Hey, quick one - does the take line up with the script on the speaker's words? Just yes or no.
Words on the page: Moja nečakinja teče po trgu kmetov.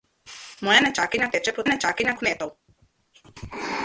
no